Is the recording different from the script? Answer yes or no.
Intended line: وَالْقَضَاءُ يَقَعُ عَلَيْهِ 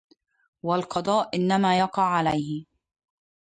yes